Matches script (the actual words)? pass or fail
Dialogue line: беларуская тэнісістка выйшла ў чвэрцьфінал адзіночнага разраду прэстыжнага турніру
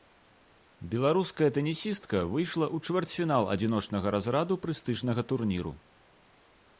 pass